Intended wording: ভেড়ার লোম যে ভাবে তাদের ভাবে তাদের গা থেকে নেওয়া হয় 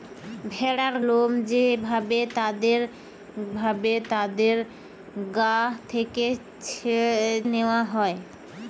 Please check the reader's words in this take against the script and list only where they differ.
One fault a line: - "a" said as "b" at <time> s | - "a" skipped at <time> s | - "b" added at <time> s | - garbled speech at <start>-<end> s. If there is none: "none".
none